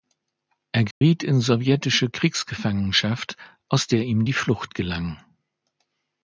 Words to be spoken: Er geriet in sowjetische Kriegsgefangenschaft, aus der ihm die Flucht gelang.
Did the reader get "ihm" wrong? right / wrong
right